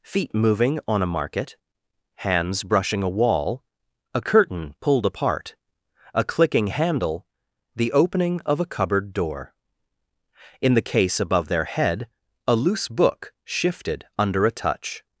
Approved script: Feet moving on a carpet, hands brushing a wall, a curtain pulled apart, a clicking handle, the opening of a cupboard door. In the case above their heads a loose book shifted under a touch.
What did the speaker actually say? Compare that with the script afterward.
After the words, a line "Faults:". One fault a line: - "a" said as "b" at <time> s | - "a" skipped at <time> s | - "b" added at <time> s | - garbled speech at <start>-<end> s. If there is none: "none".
Feet moving on a market, hands brushing a wall, a curtain pulled apart, a clicking handle, the opening of a cupboard door. In the case above their head a loose book shifted under a touch.
Faults:
- "carpet" said as "market" at 1.1 s
- "heads" said as "head" at 11.7 s